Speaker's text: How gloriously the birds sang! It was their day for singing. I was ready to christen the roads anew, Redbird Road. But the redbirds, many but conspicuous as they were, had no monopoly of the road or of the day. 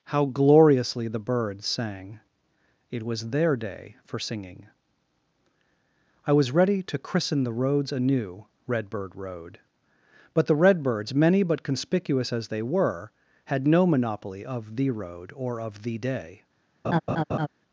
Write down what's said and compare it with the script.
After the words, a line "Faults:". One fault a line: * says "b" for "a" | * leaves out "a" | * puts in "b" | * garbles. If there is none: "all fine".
How gloriously the birds sang! It was their day for singing. I was ready to christen the roads anew, Redbird Road. But the redbirds, many but conspicuous as they were, had no monopoly of the road or of the day.
Faults:
all fine